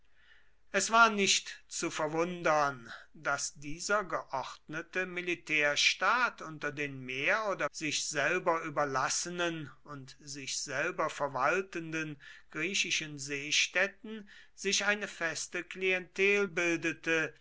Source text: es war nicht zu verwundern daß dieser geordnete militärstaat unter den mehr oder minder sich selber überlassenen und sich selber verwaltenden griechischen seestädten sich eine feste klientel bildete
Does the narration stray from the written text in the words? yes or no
yes